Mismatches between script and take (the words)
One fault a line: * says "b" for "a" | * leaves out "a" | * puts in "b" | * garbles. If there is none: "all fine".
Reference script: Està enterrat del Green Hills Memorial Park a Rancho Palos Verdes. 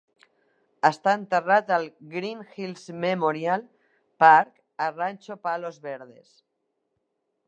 * says "al" for "del"